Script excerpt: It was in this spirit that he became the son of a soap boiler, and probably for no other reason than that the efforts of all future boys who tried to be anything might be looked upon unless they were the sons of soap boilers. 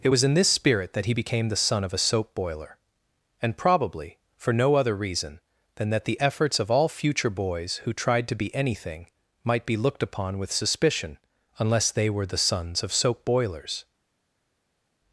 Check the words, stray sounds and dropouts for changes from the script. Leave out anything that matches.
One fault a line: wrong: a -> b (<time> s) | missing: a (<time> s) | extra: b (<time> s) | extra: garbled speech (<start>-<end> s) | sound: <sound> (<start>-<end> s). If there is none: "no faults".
extra: with suspicion (10.4 s)